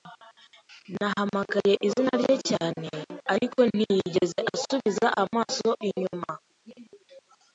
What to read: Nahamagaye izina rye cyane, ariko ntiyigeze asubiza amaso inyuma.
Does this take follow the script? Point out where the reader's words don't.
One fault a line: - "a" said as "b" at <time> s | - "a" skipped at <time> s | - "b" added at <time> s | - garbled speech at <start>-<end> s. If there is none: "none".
none